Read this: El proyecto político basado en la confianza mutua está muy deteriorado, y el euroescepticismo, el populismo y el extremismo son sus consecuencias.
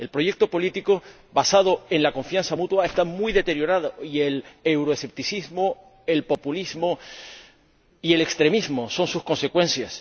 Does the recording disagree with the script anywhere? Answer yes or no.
no